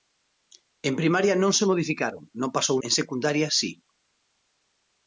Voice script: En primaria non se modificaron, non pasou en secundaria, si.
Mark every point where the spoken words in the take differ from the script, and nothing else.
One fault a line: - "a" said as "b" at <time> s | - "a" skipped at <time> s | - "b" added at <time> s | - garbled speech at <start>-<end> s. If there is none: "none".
none